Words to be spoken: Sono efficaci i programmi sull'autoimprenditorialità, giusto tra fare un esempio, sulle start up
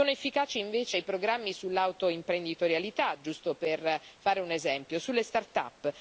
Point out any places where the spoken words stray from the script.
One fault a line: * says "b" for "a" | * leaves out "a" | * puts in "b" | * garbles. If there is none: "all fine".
* puts in "invece"
* says "per" for "tra"